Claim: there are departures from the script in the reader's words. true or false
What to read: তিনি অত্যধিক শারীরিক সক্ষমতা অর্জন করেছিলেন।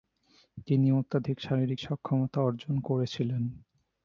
false